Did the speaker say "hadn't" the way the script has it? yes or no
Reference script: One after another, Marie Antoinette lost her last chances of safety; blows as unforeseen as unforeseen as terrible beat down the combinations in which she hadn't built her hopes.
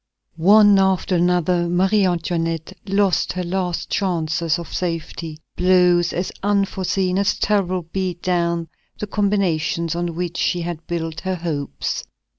no